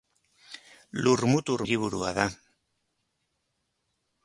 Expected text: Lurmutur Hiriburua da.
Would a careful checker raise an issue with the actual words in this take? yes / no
no